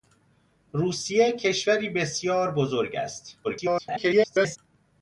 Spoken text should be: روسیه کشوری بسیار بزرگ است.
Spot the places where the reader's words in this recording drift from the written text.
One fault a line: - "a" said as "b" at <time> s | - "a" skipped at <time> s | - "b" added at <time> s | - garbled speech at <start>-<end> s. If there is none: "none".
- garbled speech at 3.4-4.6 s